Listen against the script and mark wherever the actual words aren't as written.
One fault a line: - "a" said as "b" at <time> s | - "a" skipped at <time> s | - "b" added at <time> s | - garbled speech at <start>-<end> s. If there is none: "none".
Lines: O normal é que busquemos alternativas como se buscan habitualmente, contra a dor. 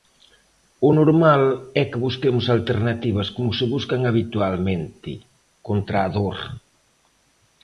none